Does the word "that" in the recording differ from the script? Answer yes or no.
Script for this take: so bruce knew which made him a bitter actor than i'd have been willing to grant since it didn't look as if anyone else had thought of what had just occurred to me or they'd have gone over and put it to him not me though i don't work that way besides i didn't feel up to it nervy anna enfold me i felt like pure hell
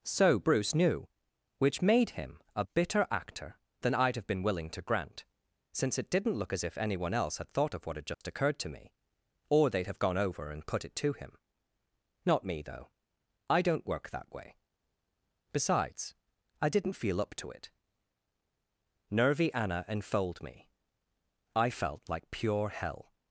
no